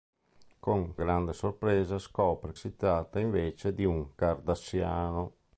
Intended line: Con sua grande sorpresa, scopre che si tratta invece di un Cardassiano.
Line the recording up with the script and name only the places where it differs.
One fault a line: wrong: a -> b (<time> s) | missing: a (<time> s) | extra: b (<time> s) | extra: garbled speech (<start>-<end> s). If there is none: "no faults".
missing: sua (0.9 s)
missing: che (2.5 s)